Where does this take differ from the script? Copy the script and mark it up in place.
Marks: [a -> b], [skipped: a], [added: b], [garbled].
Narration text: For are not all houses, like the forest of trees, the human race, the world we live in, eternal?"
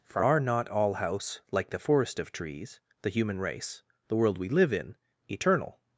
For are not all [houses, -> house] like the forest of trees, the human race, the world we live in, eternal?"